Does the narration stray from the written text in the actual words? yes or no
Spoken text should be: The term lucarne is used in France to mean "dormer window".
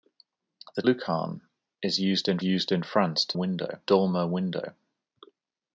yes